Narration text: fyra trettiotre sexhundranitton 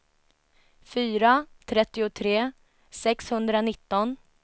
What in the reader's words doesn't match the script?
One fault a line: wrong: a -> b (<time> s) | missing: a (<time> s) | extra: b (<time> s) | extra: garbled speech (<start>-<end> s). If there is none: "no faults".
no faults